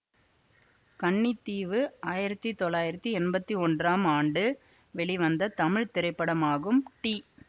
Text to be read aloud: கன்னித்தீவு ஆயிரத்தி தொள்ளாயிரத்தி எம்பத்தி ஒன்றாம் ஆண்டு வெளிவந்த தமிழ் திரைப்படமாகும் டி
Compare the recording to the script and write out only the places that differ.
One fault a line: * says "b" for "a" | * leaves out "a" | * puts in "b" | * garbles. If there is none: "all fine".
all fine